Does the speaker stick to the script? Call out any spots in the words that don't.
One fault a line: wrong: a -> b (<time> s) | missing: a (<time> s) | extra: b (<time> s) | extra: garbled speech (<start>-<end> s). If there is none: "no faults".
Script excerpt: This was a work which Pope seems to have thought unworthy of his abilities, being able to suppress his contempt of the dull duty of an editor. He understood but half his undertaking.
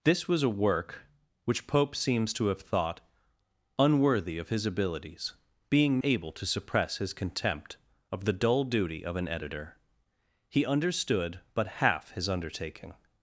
no faults